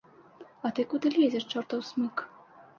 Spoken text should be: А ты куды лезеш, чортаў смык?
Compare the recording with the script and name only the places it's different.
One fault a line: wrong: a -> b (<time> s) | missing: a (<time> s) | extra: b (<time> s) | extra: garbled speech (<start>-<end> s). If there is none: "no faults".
no faults